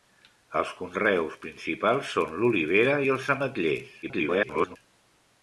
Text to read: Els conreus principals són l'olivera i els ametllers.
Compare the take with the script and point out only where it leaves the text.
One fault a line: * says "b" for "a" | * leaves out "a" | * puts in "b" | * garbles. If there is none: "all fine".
* garbles